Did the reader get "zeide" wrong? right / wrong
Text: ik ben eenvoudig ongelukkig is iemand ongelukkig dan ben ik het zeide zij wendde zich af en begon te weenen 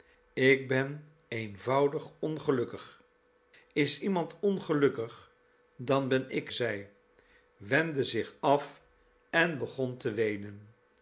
wrong